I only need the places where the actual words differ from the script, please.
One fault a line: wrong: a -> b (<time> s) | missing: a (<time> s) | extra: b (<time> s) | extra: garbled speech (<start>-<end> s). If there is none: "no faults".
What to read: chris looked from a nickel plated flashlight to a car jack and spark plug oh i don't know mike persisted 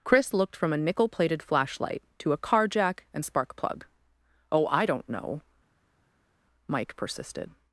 no faults